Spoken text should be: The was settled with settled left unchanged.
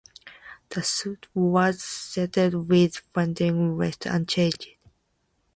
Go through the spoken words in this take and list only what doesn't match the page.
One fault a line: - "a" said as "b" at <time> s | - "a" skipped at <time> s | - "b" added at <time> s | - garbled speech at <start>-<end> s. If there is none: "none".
- "suit" added at 0.8 s
- "settled" said as "funding" at 3.0 s